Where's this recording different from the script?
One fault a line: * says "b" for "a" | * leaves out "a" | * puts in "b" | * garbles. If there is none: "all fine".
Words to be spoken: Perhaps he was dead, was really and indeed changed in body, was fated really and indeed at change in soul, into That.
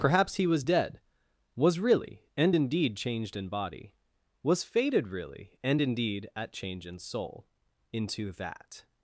all fine